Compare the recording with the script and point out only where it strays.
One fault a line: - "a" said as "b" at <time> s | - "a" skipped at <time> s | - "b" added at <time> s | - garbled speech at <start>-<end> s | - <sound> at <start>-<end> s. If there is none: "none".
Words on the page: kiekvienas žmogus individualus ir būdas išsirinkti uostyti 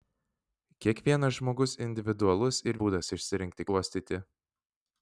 none